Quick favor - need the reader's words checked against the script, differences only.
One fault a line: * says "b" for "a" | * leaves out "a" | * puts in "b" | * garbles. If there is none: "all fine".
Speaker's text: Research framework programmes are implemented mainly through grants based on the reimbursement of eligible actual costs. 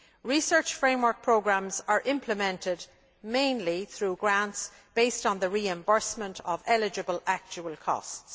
all fine